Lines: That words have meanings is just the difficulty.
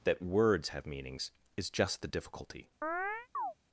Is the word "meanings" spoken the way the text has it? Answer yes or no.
yes